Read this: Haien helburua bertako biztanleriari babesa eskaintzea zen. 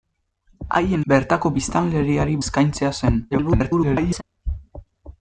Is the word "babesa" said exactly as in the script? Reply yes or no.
no